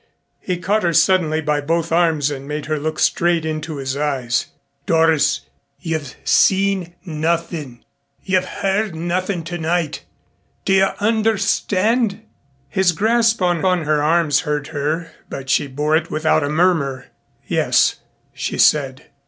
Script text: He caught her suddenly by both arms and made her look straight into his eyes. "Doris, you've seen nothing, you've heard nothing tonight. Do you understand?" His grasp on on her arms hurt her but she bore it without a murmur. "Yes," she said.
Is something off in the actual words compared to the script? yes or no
no